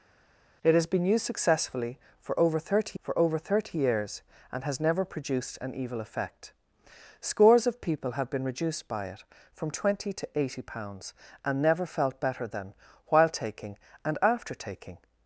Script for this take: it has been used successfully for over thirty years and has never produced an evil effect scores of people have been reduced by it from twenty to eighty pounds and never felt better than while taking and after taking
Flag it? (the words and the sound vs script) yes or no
yes